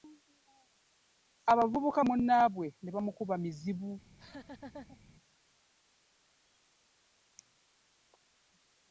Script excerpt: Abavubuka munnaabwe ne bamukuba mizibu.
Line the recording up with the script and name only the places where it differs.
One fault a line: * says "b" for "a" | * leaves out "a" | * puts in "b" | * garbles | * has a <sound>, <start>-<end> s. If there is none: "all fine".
* has a laugh, 4.0-5.0 s